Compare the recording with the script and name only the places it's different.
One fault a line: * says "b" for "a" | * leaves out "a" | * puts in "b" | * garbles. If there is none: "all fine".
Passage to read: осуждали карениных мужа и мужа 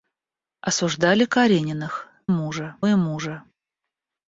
all fine